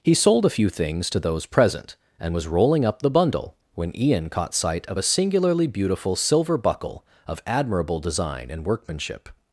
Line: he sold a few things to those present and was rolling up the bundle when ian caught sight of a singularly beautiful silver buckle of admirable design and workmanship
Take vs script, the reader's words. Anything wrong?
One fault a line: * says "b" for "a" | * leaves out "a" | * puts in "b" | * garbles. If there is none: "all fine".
all fine